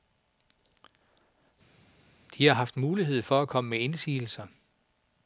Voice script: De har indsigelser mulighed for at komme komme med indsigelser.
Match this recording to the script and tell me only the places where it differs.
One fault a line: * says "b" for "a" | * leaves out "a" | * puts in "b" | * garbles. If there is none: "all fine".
* says "haft" for "indsigelser"
* leaves out "komme"